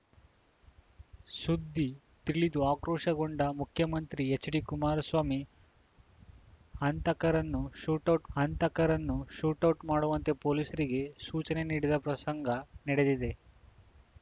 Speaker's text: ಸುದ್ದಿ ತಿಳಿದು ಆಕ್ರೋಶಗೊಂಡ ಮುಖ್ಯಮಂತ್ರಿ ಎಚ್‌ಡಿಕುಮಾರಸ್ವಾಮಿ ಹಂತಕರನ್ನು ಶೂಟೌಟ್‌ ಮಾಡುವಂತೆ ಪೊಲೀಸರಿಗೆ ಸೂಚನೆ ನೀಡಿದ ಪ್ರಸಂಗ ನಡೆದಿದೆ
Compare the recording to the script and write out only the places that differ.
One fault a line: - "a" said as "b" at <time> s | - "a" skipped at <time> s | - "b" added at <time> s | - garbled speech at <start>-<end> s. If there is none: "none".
- "ಹಂತಕರನ್ನು ಶೂಟೌಟ್" added at 8.3 s